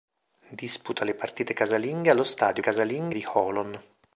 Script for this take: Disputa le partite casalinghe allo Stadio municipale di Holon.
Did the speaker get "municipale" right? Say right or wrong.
wrong